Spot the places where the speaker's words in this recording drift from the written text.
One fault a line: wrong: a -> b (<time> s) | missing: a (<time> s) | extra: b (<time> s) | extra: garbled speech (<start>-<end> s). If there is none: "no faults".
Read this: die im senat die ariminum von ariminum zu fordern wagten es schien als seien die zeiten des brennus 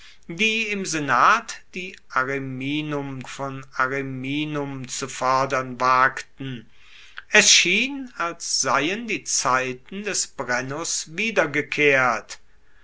no faults